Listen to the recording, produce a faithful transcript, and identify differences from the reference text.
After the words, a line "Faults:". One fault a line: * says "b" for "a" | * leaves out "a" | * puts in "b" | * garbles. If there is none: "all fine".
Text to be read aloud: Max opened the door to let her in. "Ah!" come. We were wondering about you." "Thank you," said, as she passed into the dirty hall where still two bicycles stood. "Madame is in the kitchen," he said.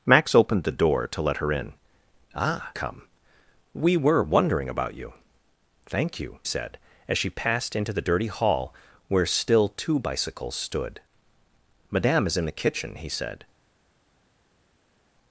Max opened the door to let her in. "Ah!" come. We were wondering about you." "Thank you," said, as she passed into the dirty hall where still two bicycles stood. "Madame is in the kitchen," he said.
Faults:
all fine